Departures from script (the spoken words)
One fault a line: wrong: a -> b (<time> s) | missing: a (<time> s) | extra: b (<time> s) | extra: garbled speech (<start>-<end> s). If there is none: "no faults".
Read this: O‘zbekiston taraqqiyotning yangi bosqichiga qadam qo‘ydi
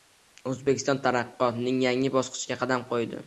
no faults